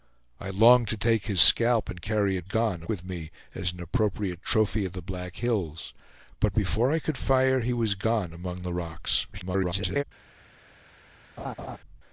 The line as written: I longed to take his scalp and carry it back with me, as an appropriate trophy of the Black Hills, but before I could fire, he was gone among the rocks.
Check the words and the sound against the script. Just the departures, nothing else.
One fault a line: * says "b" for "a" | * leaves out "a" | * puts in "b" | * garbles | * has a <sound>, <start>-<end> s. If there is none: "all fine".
* says "gone" for "back"
* garbles
* has a laugh, 11.4-11.8 s